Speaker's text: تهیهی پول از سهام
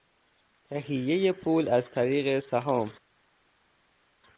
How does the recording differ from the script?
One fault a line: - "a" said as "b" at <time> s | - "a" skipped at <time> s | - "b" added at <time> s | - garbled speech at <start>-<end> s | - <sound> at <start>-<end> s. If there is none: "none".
- "طریق" added at 1.9 s